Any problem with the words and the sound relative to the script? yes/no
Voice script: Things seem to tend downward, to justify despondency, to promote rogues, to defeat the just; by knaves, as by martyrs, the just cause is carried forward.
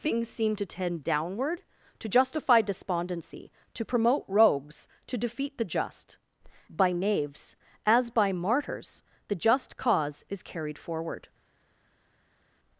no